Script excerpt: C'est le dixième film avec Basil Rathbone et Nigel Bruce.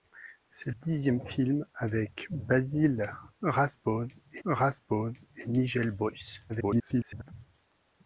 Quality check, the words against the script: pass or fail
fail